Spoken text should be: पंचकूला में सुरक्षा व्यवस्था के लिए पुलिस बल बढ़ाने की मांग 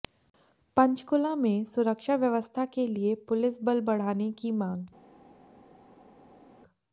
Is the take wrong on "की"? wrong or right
right